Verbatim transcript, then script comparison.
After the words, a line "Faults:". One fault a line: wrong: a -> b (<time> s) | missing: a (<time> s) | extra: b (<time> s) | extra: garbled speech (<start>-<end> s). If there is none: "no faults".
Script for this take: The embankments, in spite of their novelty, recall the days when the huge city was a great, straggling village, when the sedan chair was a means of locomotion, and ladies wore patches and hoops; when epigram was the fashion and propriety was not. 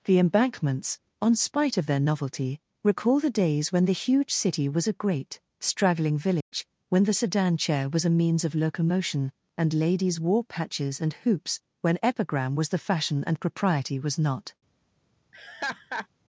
The embankments, on spite of their novelty, recall the days when the huge city was a great, straggling village, when the sedan chair was a means of locomotion, and ladies wore patches and hoops; when epigram was the fashion and propriety was not.
Faults:
wrong: in -> on (1.2 s)